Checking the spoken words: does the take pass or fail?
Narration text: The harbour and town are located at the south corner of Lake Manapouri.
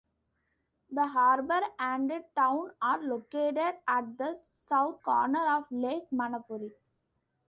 pass